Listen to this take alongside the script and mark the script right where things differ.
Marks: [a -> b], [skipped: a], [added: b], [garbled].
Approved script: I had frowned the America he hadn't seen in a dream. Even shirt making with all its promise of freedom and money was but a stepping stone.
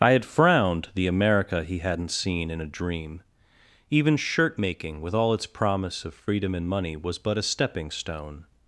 I had frowned the America he hadn't seen in a dream. Even shirt making with all its promise of freedom and money was but a stepping stone.